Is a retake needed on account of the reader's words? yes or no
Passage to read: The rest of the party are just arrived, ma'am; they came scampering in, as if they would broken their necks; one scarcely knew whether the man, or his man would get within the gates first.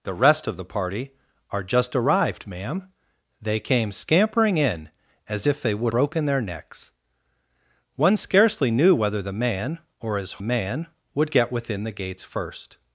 no